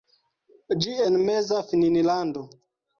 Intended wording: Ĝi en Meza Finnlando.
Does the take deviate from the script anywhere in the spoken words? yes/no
no